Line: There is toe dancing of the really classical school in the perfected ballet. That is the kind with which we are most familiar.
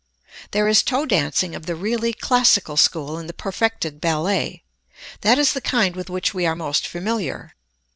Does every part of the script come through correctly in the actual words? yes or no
yes